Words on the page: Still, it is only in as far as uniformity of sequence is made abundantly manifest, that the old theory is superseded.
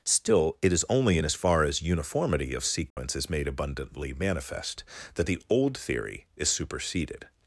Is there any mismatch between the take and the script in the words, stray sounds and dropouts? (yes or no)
yes